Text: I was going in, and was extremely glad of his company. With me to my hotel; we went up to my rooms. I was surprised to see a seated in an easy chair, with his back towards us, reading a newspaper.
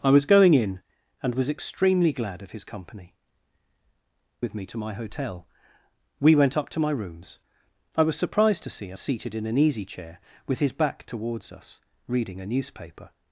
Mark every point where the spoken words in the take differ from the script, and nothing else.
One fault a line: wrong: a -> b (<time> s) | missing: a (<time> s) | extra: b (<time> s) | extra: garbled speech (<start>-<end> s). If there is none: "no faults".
no faults